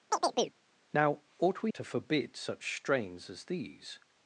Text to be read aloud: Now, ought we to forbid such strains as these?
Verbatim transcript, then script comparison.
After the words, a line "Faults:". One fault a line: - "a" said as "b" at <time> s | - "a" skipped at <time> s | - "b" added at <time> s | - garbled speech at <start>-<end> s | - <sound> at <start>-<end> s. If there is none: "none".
Now, ought we to forbid such strains as these?
Faults:
- chirp at 0.1-0.6 s